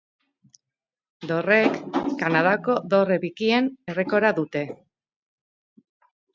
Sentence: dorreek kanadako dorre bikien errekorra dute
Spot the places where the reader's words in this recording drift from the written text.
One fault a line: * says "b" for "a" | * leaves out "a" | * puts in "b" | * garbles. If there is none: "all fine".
all fine